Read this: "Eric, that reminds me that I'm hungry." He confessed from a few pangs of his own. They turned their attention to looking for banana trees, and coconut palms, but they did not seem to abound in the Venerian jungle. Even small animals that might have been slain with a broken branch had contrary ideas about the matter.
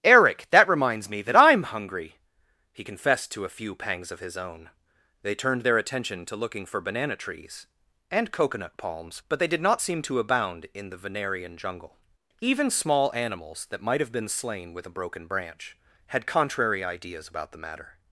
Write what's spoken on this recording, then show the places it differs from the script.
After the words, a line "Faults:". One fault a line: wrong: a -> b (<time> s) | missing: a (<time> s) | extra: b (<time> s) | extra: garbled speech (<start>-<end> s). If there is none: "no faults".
"Eric, that reminds me that I'm hungry." He confessed to a few pangs of his own. They turned their attention to looking for banana trees, and coconut palms, but they did not seem to abound in the Venerian jungle. Even small animals that might have been slain with a broken branch had contrary ideas about the matter.
Faults:
wrong: from -> to (3.3 s)